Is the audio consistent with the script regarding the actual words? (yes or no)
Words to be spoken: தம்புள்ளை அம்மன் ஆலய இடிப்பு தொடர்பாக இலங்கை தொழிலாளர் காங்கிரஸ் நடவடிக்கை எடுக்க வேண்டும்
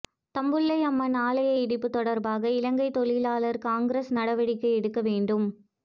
yes